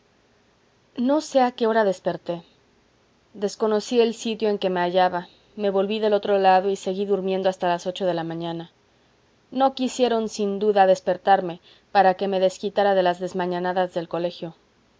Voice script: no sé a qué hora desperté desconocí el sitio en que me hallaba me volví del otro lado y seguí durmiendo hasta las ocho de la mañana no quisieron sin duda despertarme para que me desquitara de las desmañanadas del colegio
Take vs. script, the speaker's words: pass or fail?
pass